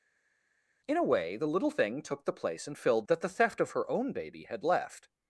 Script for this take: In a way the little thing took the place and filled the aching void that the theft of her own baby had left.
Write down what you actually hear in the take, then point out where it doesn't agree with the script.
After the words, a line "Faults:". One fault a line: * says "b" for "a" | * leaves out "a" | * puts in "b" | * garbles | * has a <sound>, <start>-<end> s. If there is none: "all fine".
In a way the little thing took the place and filled that the theft of her own baby had left.
Faults:
* leaves out "the aching void"